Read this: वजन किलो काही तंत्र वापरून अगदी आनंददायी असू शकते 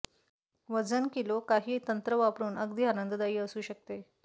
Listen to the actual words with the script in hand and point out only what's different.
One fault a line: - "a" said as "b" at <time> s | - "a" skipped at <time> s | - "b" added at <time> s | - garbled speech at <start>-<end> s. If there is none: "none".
none